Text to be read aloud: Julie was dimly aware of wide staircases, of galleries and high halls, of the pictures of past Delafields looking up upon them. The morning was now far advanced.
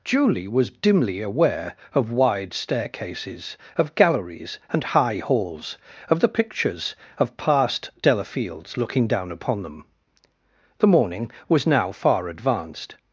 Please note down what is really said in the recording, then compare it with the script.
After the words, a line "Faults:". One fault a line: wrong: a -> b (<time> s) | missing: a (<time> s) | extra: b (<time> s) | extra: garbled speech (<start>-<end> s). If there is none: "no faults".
Julie was dimly aware of wide staircases, of galleries and high halls, of the pictures of past Delafields looking down upon them. The morning was now far advanced.
Faults:
wrong: up -> down (9.1 s)